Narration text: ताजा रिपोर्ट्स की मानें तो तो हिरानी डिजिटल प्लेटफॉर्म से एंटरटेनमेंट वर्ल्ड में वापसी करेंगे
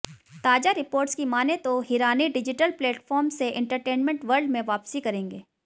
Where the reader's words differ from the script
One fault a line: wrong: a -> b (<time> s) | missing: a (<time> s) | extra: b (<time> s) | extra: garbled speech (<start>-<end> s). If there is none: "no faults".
missing: तो (1.8 s)